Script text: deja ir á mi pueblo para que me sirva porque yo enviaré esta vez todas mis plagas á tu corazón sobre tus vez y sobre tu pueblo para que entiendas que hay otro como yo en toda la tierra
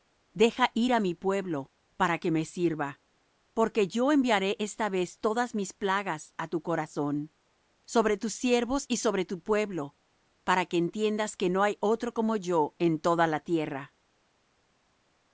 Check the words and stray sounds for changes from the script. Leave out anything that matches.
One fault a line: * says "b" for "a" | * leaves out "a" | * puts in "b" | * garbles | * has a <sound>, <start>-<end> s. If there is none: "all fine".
* says "siervos" for "vez"
* puts in "no"